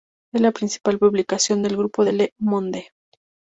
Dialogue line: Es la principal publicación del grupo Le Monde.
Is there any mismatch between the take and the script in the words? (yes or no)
no